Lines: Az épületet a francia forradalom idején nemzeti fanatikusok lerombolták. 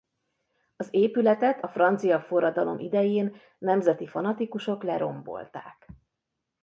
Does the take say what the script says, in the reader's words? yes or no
yes